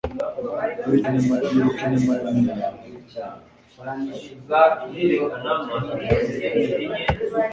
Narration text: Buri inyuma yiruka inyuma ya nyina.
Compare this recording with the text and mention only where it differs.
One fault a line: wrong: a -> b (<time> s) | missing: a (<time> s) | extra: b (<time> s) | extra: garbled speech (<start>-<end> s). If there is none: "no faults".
no faults